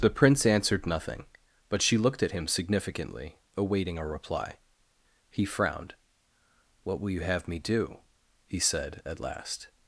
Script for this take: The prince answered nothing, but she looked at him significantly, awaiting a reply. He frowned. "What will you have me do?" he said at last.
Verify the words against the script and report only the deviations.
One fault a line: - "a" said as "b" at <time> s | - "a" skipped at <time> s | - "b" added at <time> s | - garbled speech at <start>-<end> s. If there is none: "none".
none